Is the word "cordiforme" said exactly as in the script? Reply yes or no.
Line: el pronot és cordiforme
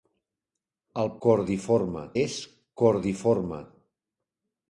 yes